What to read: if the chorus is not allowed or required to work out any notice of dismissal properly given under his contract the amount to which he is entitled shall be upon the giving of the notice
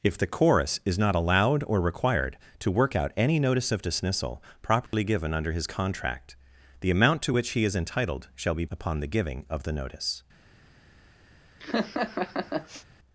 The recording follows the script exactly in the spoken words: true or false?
true